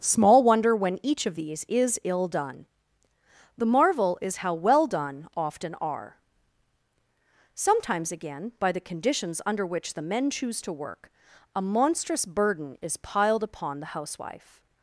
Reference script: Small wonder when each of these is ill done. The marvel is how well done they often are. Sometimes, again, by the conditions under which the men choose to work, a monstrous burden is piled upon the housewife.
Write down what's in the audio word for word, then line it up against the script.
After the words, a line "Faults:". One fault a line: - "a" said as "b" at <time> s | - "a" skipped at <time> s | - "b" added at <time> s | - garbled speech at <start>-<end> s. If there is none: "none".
Small wonder when each of these is ill done. The marvel is how well done often are. Sometimes, again, by the conditions under which the men choose to work, a monstrous burden is piled upon the housewife.
Faults:
- "they" skipped at 5.3 s